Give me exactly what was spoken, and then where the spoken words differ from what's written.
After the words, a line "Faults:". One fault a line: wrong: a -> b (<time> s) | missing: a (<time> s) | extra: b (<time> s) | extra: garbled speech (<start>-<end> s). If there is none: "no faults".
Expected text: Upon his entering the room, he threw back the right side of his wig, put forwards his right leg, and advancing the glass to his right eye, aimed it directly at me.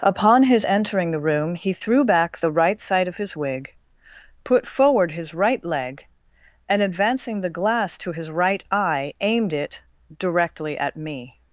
Upon his entering the room, he threw back the right side of his wig, put forward his right leg, and advancing the glass to his right eye, aimed it directly at me.
Faults:
wrong: forwards -> forward (4.6 s)